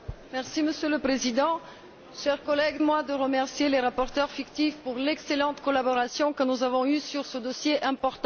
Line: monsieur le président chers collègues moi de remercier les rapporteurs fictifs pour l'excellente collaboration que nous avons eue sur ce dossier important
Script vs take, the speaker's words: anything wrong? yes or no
no